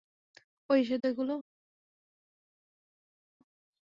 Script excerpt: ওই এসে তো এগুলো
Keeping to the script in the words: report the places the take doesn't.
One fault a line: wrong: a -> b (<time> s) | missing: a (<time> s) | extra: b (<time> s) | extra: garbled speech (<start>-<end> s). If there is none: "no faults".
no faults